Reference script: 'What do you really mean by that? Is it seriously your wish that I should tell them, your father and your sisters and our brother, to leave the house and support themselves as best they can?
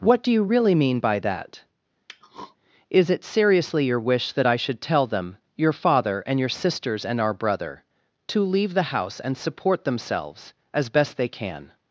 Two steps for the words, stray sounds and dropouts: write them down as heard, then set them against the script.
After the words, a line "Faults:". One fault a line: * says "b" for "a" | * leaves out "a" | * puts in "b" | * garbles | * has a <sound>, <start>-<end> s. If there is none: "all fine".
'What do you really mean by that? Is it seriously your wish that I should tell them, your father and your sisters and our brother, to leave the house and support themselves as best they can?
Faults:
* has a throat clearing, 2.1-2.6 s